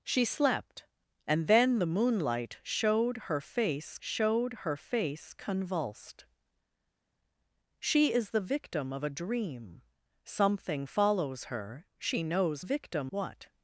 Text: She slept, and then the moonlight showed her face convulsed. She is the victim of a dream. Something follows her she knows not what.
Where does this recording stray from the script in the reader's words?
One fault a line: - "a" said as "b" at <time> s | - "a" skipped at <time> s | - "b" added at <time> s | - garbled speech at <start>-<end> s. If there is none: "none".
- "showed her face" added at 4.0 s
- "not" said as "victim" at 12.6 s